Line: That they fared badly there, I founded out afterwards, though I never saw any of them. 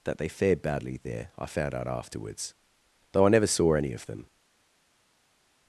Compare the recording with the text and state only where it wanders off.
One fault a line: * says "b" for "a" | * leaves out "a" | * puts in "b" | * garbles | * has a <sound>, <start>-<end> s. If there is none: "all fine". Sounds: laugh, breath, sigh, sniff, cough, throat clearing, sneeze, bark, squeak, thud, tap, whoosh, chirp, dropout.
* says "found" for "founded"